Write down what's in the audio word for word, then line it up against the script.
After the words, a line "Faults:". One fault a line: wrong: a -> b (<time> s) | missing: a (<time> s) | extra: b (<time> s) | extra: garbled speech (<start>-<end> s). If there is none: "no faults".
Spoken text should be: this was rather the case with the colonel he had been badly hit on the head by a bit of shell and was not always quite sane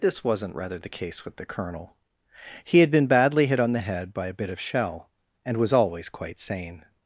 this wasn't rather the case with the colonel he had been badly hit on the head by a bit of shell and was always quite sane
Faults:
wrong: was -> wasn't (0.2 s)
missing: not (5.7 s)